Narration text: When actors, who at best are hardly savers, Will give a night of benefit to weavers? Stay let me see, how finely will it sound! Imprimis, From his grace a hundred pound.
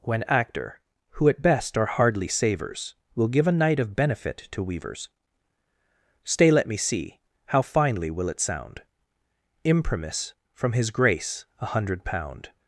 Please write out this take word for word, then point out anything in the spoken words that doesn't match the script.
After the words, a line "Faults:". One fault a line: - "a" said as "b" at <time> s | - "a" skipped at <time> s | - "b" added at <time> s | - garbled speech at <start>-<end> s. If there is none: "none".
When actor, who at best are hardly savers, Will give a night of benefit to weavers? Stay let me see, how finely will it sound! Imprimis, From his grace a hundred pound.
Faults:
- "actors" said as "actor" at 0.2 s